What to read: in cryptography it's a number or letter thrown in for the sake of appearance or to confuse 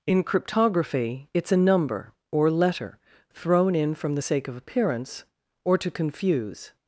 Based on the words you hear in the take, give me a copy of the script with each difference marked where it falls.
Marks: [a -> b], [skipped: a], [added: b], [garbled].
in cryptography it's a number or letter thrown in [for -> from] the sake of appearance or to confuse